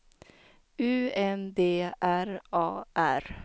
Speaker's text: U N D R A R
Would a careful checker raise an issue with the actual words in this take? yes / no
no